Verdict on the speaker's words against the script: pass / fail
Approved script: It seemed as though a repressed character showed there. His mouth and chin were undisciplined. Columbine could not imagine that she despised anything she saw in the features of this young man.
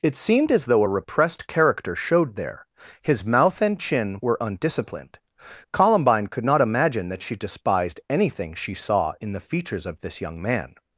pass